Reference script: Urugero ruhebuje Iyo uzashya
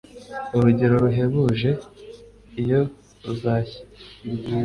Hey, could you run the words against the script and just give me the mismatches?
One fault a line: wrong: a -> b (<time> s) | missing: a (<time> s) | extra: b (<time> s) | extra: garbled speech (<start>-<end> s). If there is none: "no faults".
no faults